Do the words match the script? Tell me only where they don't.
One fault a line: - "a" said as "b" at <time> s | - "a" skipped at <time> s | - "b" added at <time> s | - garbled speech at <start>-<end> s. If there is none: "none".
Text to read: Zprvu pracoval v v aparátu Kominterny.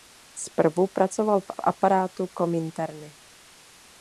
none